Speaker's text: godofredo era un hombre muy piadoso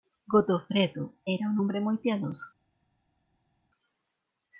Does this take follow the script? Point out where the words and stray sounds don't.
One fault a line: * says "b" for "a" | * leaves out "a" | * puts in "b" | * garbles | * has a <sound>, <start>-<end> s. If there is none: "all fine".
all fine